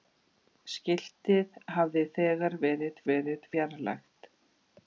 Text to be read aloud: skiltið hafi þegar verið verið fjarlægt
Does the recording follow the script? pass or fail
pass